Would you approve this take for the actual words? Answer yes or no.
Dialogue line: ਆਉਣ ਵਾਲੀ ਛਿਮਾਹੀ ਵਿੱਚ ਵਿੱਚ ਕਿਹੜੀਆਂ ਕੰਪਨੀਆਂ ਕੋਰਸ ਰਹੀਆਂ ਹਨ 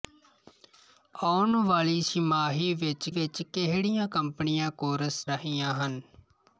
yes